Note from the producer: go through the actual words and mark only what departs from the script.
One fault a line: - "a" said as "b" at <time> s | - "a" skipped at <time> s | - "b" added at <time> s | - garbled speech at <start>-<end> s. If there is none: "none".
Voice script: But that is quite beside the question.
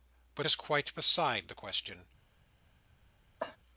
- "that" skipped at 0.5 s